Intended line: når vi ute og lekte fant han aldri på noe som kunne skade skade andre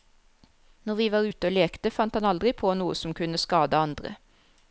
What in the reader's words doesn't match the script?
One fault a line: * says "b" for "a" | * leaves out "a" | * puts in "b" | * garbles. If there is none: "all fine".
* puts in "var"
* leaves out "skade"